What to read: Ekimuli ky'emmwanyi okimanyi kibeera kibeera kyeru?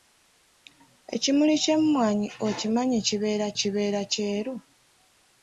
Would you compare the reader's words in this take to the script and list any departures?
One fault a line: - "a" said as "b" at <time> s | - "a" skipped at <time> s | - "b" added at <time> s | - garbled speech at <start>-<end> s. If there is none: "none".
none